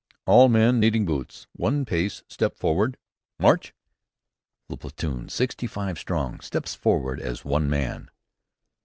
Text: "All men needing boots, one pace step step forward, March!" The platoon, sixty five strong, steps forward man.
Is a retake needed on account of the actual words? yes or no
yes